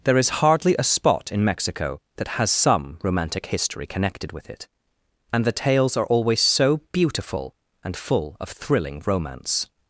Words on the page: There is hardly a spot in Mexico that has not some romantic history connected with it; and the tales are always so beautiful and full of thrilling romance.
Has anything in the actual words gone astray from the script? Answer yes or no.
yes